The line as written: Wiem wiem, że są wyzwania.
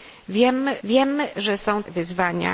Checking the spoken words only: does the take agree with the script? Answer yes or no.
yes